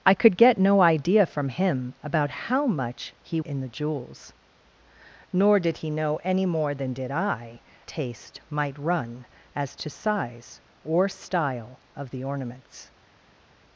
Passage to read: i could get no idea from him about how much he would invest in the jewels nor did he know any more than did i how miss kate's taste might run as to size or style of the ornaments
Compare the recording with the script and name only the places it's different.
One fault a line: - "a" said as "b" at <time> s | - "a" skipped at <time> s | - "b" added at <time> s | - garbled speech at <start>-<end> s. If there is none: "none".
- "would invest" skipped at 3.4 s
- "how miss kate's" skipped at 7.6 s